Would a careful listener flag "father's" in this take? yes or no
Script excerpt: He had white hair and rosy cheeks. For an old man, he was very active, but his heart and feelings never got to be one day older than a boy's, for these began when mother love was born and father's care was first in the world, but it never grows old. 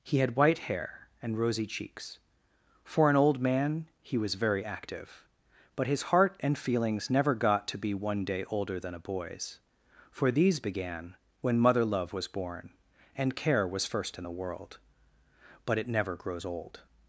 yes